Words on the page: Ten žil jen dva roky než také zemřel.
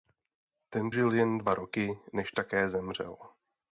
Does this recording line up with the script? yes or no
yes